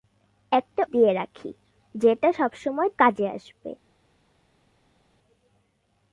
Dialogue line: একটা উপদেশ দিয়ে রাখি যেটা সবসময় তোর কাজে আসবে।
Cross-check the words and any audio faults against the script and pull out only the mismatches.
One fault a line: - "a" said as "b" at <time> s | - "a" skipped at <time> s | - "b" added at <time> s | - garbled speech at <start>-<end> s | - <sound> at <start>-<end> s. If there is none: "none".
- "উপদেশ" skipped at 0.8 s
- "তোর" skipped at 2.9 s